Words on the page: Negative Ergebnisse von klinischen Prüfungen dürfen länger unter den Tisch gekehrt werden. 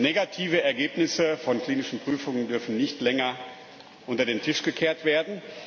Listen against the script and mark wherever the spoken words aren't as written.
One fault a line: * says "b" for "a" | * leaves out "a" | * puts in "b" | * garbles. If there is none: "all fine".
* puts in "nicht"